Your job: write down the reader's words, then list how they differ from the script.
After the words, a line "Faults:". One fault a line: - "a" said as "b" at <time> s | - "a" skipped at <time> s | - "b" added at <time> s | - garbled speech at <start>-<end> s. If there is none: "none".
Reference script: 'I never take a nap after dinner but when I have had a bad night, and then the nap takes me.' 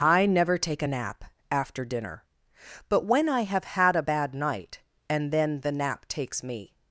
'I never take a nap after dinner but when I have had a bad night, and then the nap takes me.'
Faults:
none